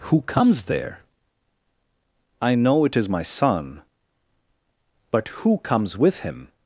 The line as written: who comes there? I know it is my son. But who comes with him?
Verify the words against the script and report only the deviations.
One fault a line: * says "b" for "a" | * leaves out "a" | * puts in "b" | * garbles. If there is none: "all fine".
all fine